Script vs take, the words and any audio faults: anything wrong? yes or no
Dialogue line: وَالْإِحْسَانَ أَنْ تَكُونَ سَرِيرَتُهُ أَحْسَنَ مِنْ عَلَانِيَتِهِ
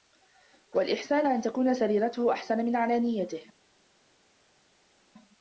no